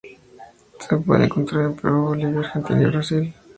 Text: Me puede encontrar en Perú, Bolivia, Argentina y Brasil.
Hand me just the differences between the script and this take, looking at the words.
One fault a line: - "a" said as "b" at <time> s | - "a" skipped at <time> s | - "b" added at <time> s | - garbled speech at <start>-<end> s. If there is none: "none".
- "Me" said as "Se" at 0.8 s